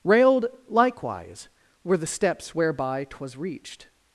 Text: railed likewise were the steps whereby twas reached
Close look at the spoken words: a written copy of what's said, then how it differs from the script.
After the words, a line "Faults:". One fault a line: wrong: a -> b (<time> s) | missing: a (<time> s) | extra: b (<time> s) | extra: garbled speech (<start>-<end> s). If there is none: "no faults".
railed likewise were the steps whereby twas reached
Faults:
no faults